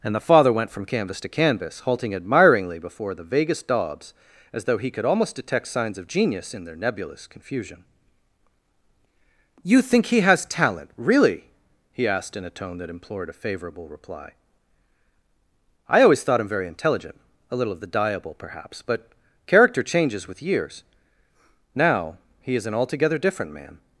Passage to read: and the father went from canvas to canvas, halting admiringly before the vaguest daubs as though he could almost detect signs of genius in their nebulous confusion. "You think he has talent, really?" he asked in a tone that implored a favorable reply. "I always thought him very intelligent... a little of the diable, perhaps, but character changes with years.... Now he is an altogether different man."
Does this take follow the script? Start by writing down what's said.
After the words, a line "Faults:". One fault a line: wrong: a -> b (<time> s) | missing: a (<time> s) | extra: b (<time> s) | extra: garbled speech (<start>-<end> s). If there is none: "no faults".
and the father went from canvas to canvas, halting admiringly before the vaguest daubs as though he could almost detect signs of genius in their nebulous confusion. "You think he has talent, really?" he asked in a tone that implored a favorable reply. "I always thought him very intelligent... a little of the diable, perhaps, but character changes with years.... Now he is an altogether different man."
Faults:
no faults